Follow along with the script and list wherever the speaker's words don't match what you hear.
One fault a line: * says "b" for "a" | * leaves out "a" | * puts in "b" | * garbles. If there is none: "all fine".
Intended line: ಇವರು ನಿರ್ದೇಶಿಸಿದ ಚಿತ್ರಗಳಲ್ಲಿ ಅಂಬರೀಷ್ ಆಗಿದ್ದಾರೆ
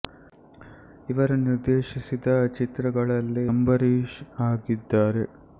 all fine